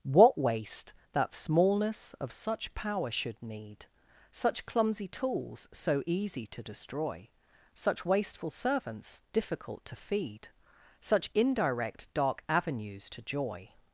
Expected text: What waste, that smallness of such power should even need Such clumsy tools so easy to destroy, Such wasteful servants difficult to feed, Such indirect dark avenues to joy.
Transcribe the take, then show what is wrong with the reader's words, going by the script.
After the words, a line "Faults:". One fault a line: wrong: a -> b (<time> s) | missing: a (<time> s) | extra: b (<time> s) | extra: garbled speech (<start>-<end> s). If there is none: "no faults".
What waste, that smallness of such power should need Such clumsy tools so easy to destroy, Such wasteful servants difficult to feed, Such indirect dark avenues to joy.
Faults:
missing: even (3.4 s)